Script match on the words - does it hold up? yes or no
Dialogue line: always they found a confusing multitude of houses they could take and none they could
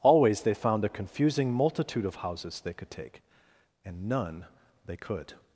yes